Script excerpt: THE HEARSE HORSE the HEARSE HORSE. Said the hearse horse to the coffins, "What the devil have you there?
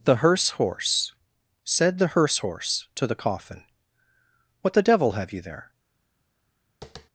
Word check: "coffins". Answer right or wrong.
wrong